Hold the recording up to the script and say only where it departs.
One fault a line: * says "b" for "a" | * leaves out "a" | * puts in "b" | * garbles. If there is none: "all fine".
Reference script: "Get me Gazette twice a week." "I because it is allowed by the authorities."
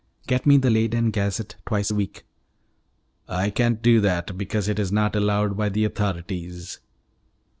* puts in "the Leyden"
* puts in "can't do that"
* puts in "not"